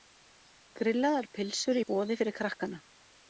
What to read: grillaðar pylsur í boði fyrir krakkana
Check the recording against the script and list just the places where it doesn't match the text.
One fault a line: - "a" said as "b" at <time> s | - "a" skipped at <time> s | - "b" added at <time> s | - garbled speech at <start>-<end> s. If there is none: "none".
none